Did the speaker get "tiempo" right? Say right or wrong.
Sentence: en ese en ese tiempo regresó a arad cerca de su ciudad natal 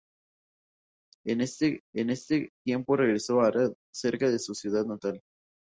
right